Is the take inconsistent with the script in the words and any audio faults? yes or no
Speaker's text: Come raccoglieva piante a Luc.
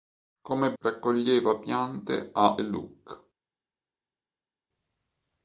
no